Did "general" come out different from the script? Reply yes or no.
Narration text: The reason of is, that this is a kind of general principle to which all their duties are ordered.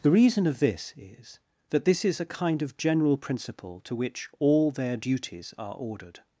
no